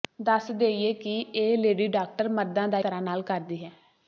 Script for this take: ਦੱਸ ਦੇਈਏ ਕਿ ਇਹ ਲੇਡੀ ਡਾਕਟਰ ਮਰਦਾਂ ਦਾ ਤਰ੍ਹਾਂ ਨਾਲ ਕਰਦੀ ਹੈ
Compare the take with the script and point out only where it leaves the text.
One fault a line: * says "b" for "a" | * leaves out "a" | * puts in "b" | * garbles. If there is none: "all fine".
all fine